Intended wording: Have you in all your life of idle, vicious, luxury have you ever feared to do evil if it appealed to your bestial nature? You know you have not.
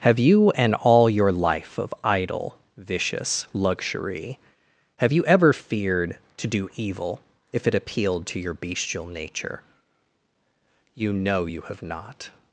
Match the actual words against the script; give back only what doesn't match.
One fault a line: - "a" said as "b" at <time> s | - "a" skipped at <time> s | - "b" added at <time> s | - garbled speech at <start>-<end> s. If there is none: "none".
- "in" said as "and" at 0.5 s